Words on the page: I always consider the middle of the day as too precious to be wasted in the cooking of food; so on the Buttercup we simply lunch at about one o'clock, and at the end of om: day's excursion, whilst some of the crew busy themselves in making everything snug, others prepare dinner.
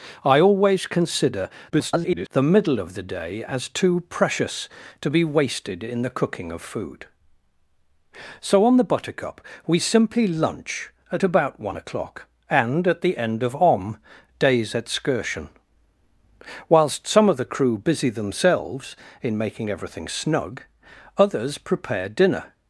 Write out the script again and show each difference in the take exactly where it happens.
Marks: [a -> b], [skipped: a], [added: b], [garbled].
I always consider [garbled] the middle of the day as too precious to be wasted in the cooking of food; so on the Buttercup we simply lunch at about one o'clock, and at the end of om: day's excursion, whilst some of the crew busy themselves in making everything snug, others prepare dinner.